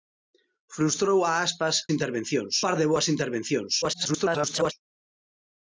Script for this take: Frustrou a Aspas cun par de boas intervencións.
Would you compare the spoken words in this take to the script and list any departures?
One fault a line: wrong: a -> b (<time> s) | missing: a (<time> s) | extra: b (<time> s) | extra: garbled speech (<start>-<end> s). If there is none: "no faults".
wrong: cun -> intervencións (1.9 s)
extra: garbled speech (3.8-4.7 s)